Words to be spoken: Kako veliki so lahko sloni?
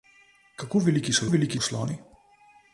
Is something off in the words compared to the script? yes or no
yes